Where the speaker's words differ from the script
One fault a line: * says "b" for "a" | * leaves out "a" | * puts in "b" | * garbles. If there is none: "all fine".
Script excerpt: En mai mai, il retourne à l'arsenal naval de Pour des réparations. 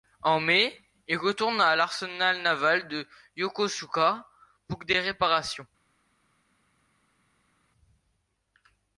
* leaves out "mai"
* puts in "Yokosuka"